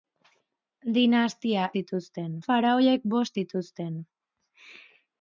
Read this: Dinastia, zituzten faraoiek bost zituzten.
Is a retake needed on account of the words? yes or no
no